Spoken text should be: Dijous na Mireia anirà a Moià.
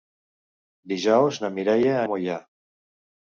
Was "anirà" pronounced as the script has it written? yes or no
no